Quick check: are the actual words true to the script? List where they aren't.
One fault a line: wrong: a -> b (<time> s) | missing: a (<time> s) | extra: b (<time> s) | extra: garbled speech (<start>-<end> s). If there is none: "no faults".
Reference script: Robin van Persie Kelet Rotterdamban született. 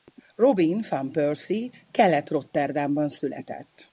no faults